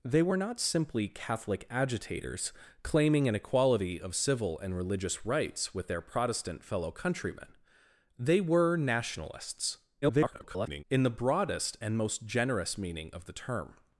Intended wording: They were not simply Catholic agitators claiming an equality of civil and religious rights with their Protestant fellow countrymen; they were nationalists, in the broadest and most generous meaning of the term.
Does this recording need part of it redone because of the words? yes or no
yes